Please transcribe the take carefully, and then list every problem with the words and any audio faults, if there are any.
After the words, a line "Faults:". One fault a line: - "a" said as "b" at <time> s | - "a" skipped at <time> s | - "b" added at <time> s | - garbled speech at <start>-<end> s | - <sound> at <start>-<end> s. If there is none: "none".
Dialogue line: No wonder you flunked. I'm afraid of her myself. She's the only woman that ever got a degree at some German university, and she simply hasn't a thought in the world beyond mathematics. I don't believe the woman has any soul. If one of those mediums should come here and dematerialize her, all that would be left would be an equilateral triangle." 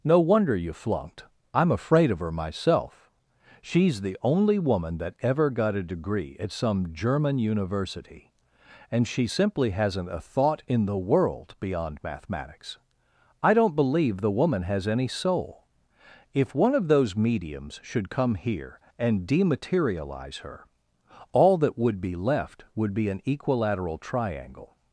No wonder you flunked. I'm afraid of her myself. She's the only woman that ever got a degree at some German university, and she simply hasn't a thought in the world beyond mathematics. I don't believe the woman has any soul. If one of those mediums should come here and dematerialize her, all that would be left would be an equilateral triangle."
Faults:
none